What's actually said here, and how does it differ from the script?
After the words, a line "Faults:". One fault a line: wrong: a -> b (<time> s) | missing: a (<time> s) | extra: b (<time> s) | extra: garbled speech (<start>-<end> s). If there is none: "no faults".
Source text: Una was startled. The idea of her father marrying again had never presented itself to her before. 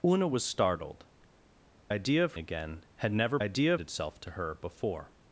Una was startled. Idea of again had never idea itself to her before.
Faults:
missing: The (1.1 s)
missing: her father marrying (2.3 s)
wrong: presented -> idea (3.4 s)